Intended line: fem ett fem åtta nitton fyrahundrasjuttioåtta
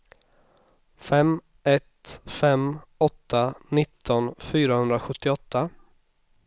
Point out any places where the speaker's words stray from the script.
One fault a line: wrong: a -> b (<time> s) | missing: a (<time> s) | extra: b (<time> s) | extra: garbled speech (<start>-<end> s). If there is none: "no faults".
no faults